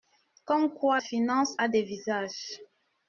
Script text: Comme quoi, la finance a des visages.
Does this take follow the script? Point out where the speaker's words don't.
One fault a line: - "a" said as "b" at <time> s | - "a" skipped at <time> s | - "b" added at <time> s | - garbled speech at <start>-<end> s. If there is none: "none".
- "la" skipped at 1.0 s